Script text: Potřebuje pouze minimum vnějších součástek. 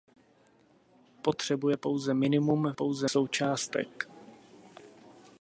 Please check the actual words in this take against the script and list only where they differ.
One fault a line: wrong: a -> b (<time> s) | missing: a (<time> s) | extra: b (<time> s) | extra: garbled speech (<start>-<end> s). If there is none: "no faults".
wrong: vnějších -> pouze (2.7 s)